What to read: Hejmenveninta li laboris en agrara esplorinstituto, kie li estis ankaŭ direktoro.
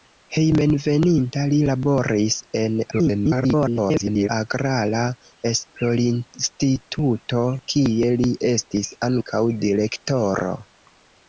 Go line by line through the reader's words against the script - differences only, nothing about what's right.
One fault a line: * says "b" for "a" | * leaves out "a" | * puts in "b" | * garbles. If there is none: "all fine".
* garbles